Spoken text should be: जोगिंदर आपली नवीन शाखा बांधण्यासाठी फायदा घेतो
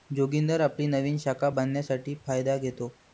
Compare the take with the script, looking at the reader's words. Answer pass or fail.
pass